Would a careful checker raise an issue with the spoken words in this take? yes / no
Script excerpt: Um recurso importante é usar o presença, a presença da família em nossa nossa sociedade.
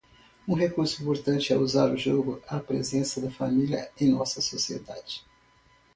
yes